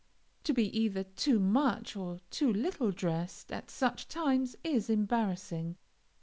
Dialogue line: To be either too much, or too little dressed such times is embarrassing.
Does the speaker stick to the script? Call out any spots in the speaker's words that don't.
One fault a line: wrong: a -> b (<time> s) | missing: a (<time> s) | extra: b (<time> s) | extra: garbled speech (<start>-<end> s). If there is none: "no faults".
extra: at (3.5 s)